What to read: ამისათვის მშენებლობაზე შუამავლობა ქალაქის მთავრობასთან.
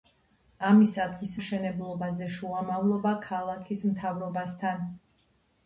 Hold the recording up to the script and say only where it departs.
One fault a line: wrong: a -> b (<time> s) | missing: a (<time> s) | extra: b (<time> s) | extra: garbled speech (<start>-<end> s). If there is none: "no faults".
no faults